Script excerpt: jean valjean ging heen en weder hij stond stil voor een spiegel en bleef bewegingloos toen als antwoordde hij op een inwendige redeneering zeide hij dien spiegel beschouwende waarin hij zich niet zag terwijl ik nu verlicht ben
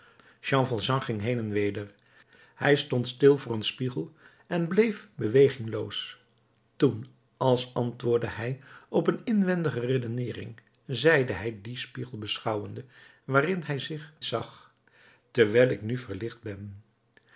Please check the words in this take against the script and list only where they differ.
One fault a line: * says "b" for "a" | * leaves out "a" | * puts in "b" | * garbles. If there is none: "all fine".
* leaves out "niet"